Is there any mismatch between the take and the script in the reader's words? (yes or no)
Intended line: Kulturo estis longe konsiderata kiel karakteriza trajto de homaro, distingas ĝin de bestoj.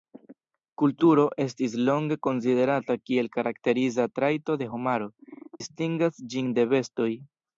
no